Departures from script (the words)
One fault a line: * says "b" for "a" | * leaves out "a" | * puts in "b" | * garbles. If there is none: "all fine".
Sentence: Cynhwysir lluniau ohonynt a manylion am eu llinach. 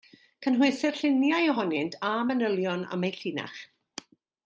all fine